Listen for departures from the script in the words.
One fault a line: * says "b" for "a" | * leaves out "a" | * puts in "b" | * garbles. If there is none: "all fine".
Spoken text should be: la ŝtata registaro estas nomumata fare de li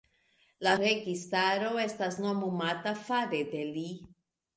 * leaves out "ŝtata"